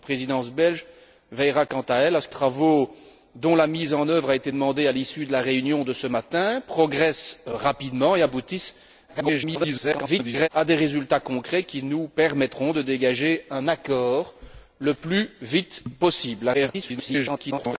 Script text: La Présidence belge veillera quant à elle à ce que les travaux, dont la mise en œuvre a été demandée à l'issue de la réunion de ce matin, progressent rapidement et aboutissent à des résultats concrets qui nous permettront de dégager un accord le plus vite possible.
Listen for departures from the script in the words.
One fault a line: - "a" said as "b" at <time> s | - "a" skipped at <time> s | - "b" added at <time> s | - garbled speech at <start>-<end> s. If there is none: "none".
- "les" skipped at 2.4 s
- garbled speech at 9.1-10.5 s
- garbled speech at 16.5-17.8 s